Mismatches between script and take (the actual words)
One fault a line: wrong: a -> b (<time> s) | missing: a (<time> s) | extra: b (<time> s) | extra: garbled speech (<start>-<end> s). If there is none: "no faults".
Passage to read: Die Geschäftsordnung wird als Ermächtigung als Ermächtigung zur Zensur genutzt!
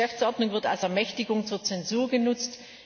missing: als Ermächtigung (1.4 s)